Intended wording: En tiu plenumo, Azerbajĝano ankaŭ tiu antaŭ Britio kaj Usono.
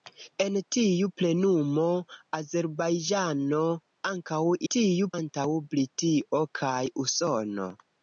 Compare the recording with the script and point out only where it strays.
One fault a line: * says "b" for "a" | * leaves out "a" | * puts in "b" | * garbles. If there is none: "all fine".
all fine